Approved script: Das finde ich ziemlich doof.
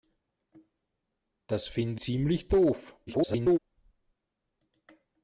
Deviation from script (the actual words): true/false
true